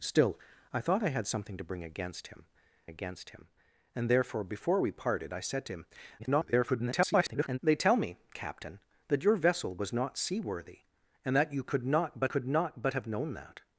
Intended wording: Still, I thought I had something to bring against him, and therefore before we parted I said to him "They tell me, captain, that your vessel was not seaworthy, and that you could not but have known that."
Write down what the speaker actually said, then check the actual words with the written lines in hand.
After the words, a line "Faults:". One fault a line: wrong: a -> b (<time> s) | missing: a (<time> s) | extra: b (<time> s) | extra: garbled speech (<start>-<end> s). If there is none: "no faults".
Still, I thought I had something to bring against him against him, and therefore before we parted I said to him [garbled] "They tell me, captain, that your vessel was not seaworthy, and that you could not but could not but have known that."
Faults:
extra: against him (2.9 s)
extra: garbled speech (6.2-7.6 s)
extra: could not but (12.2 s)